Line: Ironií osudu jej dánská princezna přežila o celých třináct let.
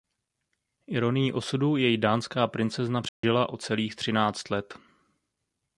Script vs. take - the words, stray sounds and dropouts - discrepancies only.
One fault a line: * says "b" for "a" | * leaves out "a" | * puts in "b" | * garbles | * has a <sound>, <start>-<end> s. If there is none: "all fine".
* has a dropout, 3.1-3.2 s